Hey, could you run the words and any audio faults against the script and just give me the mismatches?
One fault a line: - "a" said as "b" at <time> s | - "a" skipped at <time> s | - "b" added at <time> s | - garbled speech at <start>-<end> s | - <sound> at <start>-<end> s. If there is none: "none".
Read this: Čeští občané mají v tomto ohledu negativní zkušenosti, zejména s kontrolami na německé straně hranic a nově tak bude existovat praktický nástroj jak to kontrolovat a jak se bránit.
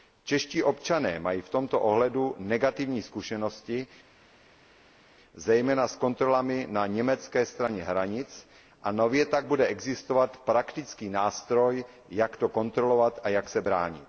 none